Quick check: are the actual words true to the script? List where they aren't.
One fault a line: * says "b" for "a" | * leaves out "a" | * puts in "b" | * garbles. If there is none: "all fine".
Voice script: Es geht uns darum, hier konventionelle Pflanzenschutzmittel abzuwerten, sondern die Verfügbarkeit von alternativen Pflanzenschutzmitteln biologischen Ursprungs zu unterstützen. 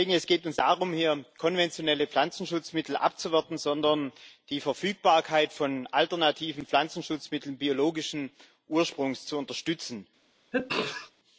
all fine